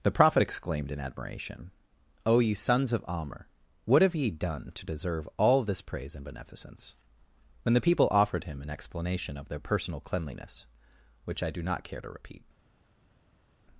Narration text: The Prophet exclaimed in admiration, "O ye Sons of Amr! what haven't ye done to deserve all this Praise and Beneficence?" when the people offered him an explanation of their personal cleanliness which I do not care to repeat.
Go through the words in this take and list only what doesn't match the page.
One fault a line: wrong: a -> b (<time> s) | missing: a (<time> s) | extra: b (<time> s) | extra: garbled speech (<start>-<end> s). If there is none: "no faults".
wrong: haven't -> have (4.0 s)